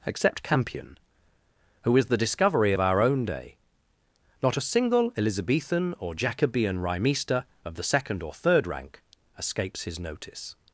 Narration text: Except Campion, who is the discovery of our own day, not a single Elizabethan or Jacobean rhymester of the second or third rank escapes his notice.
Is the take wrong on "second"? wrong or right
right